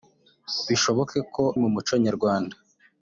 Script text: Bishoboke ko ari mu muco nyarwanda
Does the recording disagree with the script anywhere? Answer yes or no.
yes